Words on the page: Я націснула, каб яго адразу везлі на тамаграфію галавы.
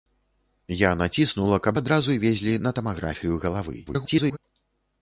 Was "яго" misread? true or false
true